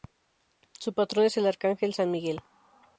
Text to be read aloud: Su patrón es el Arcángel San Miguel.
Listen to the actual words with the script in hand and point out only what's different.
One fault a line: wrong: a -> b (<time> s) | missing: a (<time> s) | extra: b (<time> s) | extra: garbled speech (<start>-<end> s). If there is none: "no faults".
no faults